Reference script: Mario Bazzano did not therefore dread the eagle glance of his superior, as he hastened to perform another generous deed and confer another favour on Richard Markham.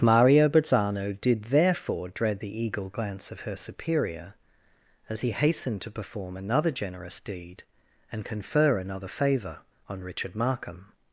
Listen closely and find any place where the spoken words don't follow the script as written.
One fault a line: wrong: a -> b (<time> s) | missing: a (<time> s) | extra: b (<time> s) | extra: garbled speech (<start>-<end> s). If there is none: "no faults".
missing: not (1.4 s)
wrong: his -> her (3.4 s)